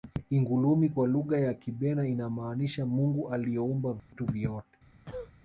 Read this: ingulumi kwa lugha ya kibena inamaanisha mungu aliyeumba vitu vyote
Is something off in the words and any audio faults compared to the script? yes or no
yes